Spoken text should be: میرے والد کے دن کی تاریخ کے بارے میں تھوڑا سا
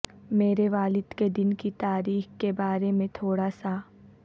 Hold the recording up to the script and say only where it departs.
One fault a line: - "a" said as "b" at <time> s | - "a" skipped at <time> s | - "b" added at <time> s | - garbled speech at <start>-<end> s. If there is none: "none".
none